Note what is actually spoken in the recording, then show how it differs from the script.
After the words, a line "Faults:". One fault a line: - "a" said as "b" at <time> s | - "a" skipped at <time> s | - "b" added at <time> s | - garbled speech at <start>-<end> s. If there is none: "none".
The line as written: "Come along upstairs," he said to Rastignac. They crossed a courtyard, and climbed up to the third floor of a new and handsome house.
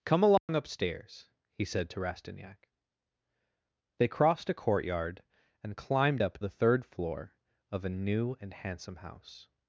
"Come along upstairs," he said to Rastignac. They crossed a courtyard, and climbed up the third floor of a new and handsome house.
Faults:
- "to" skipped at 6.4 s